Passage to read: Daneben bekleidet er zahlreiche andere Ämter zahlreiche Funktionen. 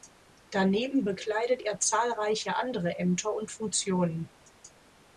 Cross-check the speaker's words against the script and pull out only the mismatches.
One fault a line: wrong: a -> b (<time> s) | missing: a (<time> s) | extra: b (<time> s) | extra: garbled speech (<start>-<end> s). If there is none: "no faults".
wrong: zahlreiche -> und (3.3 s)